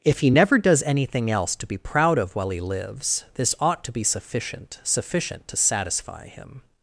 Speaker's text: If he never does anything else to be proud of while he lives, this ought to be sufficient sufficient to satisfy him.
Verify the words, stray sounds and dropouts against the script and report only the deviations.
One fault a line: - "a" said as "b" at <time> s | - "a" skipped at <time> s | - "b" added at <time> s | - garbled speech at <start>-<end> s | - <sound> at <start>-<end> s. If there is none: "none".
none